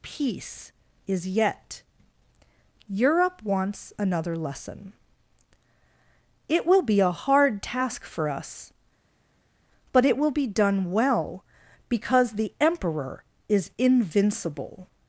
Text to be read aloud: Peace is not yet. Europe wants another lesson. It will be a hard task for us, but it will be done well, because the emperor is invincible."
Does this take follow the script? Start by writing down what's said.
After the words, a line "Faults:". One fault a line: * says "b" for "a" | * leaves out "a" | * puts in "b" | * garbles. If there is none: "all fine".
Peace is yet. Europe wants another lesson. It will be a hard task for us, but it will be done well, because the emperor is invincible."
Faults:
* leaves out "not"